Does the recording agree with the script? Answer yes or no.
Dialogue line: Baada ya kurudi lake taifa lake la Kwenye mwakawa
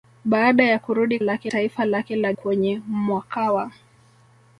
yes